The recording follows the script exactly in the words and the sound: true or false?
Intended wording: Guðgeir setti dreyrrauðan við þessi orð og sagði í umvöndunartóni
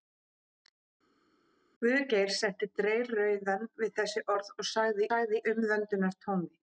false